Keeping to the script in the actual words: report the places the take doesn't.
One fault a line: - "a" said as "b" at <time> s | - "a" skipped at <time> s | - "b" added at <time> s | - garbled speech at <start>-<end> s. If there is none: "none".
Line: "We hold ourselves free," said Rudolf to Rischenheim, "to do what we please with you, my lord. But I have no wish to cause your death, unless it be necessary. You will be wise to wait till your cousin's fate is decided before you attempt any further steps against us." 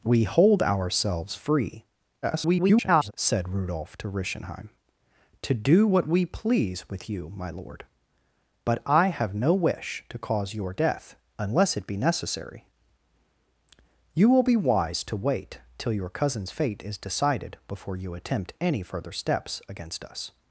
- garbled speech at 2.2-3.1 s